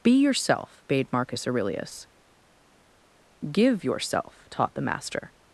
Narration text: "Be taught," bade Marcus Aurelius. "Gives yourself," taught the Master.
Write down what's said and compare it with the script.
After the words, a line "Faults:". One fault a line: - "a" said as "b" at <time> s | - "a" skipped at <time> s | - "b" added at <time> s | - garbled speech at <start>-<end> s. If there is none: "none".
"Be yourself," bade Marcus Aurelius. "Give yourself," taught the Master.
Faults:
- "taught" said as "yourself" at 0.2 s
- "Gives" said as "Give" at 3.5 s